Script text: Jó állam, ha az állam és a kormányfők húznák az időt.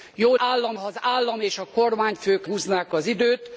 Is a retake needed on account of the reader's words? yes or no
no